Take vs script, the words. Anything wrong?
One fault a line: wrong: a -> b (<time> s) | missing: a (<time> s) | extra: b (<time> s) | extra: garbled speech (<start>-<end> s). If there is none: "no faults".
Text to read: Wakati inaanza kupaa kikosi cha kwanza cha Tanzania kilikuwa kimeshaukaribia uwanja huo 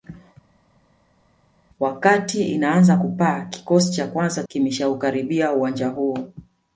missing: cha Tanzania kilikuwa (4.4 s)